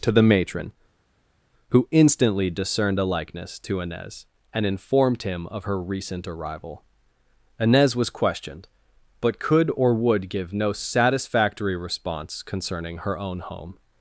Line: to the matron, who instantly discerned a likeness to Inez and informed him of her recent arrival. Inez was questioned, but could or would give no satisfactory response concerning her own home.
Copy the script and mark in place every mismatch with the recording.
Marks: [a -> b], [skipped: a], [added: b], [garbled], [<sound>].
to the matron, who instantly discerned a likeness to Inez and informed him of her recent arrival. Inez was questioned, but could or would give no satisfactory response concerning her own home.